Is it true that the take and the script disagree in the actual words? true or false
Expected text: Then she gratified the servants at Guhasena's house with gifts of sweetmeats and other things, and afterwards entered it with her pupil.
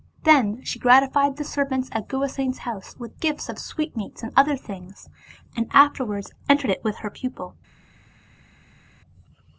false